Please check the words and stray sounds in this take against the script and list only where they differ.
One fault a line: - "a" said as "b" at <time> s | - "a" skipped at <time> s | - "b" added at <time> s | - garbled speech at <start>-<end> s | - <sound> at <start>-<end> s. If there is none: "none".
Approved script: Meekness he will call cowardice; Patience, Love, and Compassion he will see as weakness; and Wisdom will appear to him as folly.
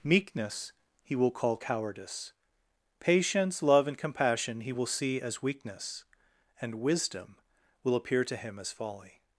none